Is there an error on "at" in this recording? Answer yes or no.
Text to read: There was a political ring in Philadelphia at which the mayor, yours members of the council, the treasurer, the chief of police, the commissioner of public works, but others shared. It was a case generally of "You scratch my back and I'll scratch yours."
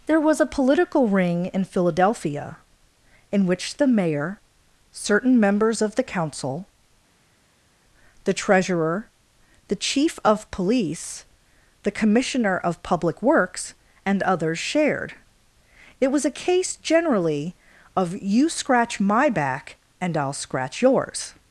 yes